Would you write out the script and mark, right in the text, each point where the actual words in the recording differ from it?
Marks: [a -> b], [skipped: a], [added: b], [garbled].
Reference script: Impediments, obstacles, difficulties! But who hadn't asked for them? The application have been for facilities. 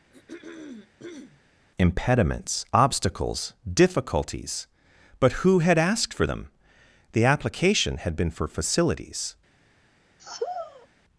Impediments, obstacles, difficulties! But who [hadn't -> had] asked for them? The application [have -> had] been for facilities.